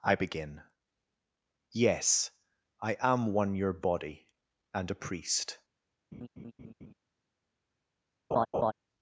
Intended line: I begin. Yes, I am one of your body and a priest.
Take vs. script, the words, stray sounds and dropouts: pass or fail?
fail